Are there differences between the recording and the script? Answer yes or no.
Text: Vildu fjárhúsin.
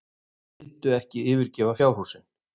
yes